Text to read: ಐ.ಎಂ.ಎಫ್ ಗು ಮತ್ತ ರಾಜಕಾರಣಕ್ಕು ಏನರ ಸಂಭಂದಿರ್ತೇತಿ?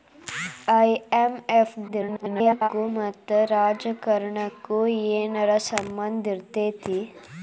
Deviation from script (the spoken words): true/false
true